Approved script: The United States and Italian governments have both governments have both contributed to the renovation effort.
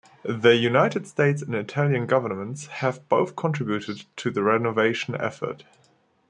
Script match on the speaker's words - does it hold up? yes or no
no